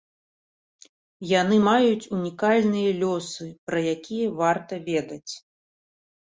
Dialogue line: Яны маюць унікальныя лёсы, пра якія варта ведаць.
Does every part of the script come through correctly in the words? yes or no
yes